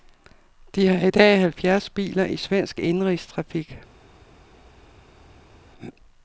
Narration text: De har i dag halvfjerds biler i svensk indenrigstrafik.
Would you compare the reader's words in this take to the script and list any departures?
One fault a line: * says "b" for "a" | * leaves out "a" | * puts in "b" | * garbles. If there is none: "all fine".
all fine